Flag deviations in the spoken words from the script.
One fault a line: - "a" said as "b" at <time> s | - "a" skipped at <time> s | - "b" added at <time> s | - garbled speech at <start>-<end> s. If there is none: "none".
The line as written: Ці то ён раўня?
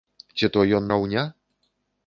none